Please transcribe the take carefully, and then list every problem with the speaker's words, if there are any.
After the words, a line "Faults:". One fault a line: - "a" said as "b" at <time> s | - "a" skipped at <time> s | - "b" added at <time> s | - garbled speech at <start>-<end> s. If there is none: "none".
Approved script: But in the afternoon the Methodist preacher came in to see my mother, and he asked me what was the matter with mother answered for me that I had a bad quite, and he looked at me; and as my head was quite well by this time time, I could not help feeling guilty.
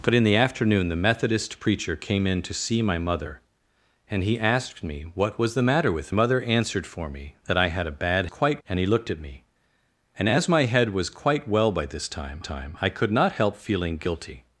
But in the afternoon the Methodist preacher came in to see my mother, and he asked me what was the matter with mother answered for me that I had a bad quite, and he looked at me; and as my head was quite well by this time time, I could not help feeling guilty.
Faults:
none